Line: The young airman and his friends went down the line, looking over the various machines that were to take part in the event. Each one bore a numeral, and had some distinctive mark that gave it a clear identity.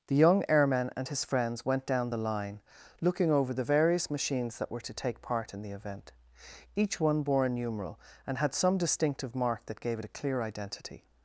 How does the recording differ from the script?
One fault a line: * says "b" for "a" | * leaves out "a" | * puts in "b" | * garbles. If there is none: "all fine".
all fine